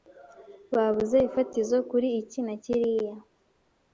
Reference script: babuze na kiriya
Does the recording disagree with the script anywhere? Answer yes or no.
yes